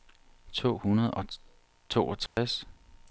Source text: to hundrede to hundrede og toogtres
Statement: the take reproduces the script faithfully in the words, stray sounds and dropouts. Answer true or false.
false